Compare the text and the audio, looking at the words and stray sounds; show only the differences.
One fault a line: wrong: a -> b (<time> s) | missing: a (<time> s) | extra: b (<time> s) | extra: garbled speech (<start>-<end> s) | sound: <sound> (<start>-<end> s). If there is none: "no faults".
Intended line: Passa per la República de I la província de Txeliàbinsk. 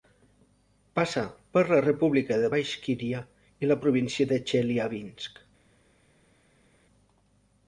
extra: Baixkíria (2.5 s)